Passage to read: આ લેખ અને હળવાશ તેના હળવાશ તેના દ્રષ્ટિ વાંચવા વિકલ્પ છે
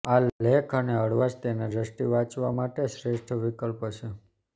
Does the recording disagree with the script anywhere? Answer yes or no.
yes